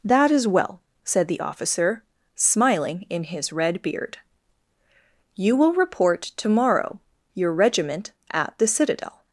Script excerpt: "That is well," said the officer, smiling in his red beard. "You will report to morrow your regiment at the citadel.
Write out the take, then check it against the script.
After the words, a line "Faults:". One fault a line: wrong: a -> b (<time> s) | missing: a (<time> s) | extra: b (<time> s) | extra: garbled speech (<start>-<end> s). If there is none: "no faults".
"That is well," said the officer, smiling in his red beard. "You will report to morrow your regiment at the citadel.
Faults:
no faults